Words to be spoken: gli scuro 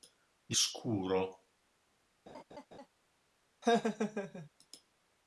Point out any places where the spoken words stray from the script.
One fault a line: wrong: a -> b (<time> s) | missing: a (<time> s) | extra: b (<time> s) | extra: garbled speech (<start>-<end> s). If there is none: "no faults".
no faults